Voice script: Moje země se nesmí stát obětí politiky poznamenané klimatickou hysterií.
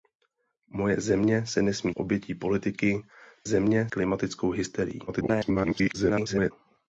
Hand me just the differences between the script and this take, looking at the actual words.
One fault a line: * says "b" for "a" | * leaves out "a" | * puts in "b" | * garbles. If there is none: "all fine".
* leaves out "stát"
* says "země" for "poznamenané"
* garbles